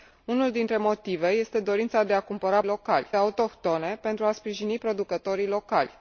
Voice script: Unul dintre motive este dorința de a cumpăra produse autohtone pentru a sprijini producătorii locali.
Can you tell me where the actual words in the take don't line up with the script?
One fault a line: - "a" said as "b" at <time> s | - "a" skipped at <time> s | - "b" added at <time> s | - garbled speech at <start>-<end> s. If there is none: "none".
- "produse" said as "locali" at 2.6 s